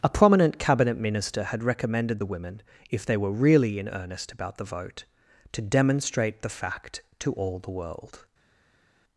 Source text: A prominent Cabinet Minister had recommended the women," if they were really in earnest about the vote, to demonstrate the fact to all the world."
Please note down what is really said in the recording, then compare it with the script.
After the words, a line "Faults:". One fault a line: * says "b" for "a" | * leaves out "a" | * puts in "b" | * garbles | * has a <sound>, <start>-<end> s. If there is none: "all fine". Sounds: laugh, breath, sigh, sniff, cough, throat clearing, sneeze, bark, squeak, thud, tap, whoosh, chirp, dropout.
A prominent Cabinet Minister had recommended the women," if they were really in earnest about the vote, to demonstrate the fact to all the world."
Faults:
all fine